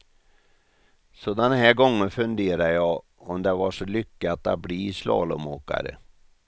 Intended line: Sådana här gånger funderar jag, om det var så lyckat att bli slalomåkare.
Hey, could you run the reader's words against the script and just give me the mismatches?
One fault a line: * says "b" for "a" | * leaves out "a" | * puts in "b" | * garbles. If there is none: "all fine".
all fine